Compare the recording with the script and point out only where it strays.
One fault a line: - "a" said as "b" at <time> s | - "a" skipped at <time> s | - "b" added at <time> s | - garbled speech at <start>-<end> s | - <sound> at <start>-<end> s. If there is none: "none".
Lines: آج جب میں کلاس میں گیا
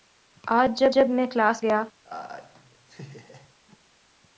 - "جب" added at 0.9 s
- "میں" skipped at 1.6 s
- laugh at 2.0-3.5 s